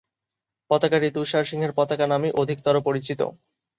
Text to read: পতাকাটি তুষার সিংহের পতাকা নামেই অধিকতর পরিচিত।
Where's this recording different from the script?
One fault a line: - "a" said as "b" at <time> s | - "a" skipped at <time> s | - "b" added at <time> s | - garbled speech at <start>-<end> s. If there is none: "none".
none